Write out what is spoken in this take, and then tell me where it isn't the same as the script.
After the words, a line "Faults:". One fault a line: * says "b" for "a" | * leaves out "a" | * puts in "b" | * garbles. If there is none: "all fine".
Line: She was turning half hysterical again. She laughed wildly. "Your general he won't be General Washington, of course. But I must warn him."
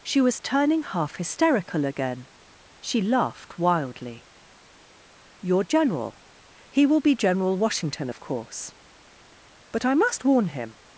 She was turning half hysterical again. She laughed wildly. "Your general he will be General Washington, of course. But I must warn him."
Faults:
* says "will" for "won't"